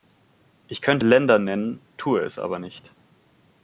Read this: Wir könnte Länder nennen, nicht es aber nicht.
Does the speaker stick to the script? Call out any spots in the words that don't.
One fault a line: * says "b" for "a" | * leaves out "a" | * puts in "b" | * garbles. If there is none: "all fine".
* says "Ich" for "Wir"
* says "tue" for "nicht"